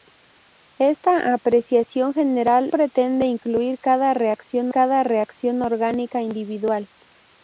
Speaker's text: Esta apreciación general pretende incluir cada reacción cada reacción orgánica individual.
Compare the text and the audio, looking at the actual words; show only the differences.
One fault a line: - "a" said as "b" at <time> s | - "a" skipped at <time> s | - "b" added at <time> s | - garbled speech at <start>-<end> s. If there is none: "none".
none